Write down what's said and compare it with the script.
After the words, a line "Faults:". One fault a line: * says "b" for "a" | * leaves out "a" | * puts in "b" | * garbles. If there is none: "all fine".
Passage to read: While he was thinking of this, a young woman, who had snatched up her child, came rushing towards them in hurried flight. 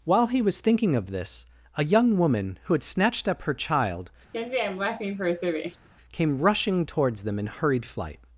While he was thinking of this, a young woman, who had snatched up her child, came rushing towards them in hurried flight.
Faults:
all fine